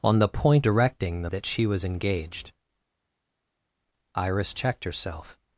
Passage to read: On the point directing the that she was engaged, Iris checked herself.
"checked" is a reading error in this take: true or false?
false